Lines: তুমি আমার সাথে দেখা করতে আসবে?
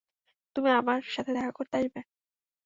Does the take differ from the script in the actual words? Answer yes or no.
no